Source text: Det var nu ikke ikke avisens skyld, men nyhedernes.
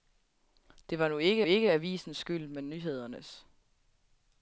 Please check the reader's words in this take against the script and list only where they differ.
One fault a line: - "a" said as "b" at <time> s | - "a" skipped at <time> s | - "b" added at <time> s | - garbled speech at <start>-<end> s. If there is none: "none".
none